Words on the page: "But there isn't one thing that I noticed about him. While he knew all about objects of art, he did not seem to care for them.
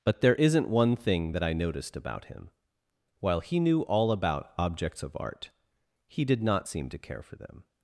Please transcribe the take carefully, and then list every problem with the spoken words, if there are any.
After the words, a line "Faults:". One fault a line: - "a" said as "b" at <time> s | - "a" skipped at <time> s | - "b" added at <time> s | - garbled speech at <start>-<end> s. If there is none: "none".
"But there isn't one thing that I noticed about him. While he knew all about objects of art, he did not seem to care for them.
Faults:
none